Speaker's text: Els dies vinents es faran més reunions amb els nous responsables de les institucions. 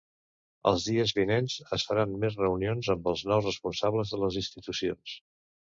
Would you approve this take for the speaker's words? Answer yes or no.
yes